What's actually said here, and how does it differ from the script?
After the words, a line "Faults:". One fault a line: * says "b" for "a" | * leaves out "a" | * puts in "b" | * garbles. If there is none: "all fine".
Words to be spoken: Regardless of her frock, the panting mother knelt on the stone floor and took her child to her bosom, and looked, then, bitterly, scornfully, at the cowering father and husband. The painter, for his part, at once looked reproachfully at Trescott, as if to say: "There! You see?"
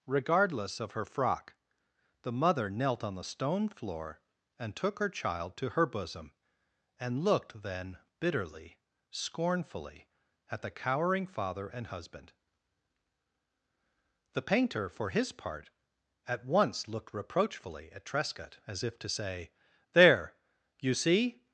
Regardless of her frock, the mother knelt on the stone floor and took her child to her bosom, and looked, then, bitterly, scornfully, at the cowering father and husband. The painter, for his part, at once looked reproachfully at Trescott, as if to say: "There! You see?"
Faults:
* leaves out "panting"